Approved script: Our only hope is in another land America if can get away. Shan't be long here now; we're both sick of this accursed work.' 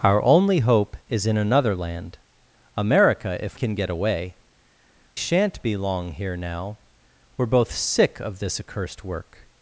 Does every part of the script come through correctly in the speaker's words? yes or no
yes